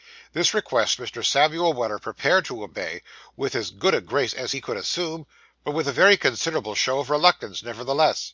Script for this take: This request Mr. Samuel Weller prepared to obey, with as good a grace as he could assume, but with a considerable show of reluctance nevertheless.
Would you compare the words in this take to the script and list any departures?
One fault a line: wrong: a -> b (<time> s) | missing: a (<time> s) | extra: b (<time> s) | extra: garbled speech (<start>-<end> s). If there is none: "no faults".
extra: very (5.9 s)